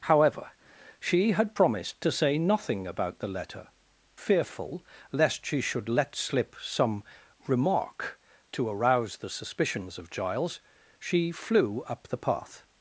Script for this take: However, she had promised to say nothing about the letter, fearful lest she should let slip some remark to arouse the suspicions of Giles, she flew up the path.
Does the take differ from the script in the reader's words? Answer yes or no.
no